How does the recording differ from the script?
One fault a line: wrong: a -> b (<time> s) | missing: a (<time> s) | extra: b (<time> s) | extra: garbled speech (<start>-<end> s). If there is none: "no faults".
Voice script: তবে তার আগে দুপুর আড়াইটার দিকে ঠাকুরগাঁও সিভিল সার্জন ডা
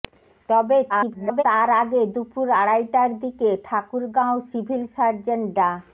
extra: garbled speech (0.9-1.4 s)